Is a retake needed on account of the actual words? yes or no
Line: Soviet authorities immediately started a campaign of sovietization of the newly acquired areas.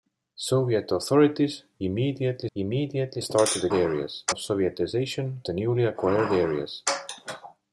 yes